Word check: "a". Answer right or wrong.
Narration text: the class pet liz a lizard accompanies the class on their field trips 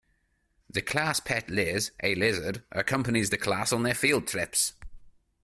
right